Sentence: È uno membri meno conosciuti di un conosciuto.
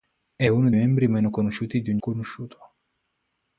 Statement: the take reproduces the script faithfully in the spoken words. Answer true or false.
true